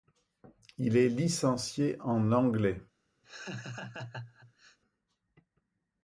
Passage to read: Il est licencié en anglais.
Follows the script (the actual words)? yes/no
yes